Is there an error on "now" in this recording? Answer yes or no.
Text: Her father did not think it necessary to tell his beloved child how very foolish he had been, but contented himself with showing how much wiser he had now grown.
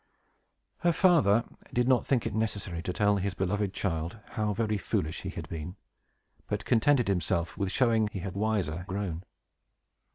yes